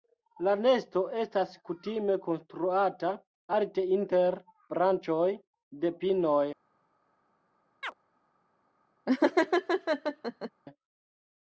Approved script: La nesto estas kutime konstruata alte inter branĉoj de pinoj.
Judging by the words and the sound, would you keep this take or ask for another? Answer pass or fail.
fail